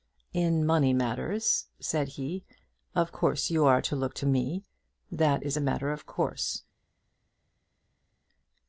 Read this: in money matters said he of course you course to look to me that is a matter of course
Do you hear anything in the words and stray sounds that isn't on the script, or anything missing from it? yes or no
yes